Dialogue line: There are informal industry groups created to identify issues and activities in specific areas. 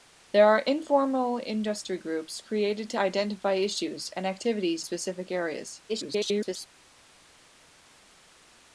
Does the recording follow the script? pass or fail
fail